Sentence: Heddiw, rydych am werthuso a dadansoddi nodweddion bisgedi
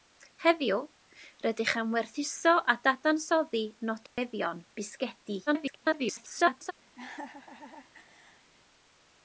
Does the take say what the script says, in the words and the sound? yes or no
no